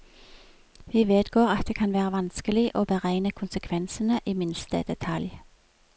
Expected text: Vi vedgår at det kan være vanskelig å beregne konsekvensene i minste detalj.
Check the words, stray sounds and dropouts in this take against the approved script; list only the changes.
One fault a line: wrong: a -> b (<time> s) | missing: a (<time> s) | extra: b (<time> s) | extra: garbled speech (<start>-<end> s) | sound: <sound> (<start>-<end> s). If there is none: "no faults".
no faults